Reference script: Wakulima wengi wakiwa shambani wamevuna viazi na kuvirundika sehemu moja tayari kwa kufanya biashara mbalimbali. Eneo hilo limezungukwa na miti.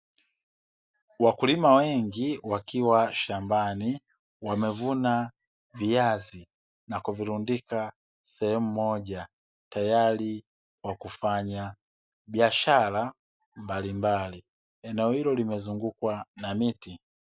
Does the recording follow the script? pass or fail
pass